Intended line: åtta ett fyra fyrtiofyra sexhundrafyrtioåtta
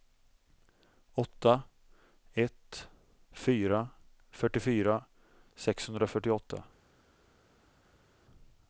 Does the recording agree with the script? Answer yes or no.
yes